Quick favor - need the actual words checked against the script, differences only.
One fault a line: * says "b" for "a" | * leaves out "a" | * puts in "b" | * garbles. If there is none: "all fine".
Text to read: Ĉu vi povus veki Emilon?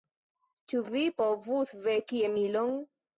all fine